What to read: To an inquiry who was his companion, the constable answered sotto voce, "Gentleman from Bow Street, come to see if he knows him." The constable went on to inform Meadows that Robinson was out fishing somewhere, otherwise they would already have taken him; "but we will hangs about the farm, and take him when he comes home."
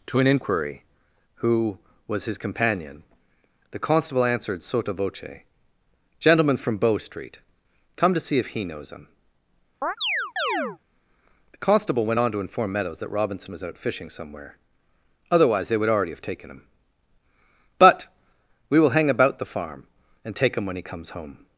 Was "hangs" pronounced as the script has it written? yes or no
no